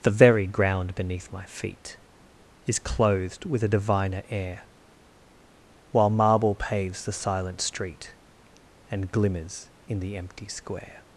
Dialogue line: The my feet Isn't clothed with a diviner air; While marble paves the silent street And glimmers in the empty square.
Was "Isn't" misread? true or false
true